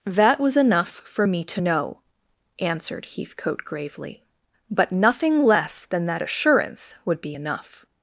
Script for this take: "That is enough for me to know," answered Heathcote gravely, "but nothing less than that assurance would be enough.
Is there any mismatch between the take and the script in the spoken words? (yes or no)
yes